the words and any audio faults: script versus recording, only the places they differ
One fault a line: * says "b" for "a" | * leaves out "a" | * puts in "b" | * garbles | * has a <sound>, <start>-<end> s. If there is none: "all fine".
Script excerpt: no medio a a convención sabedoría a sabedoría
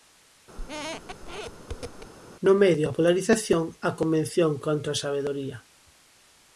* has a squeak, 0.6-2.1 s
* puts in "polarización"
* says "contra" for "sabedoría"